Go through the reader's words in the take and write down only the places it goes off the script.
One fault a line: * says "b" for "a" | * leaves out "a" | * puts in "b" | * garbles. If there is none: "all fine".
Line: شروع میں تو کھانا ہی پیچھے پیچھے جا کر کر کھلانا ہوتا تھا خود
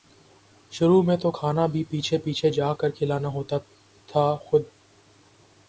* says "بھی" for "ہی"
* leaves out "کر"